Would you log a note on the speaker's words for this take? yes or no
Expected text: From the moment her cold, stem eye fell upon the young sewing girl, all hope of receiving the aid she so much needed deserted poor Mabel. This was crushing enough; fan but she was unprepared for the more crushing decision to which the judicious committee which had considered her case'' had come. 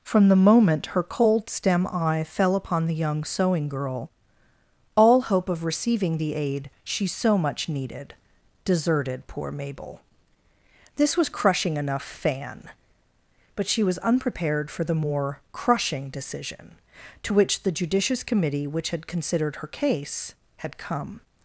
no